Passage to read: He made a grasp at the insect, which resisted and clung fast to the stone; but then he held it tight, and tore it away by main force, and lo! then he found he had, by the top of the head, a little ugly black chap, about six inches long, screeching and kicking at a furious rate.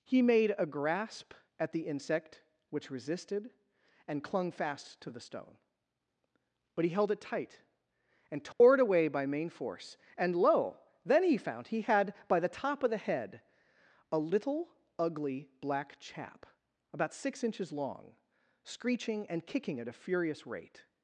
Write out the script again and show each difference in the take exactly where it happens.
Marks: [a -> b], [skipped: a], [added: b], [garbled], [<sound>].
He made a grasp at the insect, which resisted and clung fast to the stone; but [skipped: then] he held it tight, and tore [dropout] it away by main force, and lo! then he found he had, by the top of the head, a little ugly black chap, about six inches long, screeching and kicking at a furious rate.